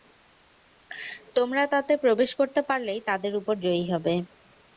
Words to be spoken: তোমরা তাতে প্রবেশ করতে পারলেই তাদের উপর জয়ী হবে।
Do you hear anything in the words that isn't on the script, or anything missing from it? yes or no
no